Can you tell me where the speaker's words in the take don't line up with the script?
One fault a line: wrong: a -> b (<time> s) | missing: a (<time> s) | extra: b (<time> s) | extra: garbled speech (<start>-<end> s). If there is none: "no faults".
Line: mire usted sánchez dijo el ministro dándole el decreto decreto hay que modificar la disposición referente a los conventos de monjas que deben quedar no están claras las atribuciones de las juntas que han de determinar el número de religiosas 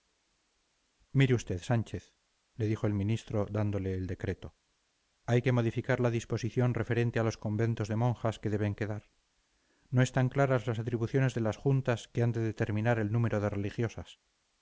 extra: le (2.5 s)
missing: decreto (4.5 s)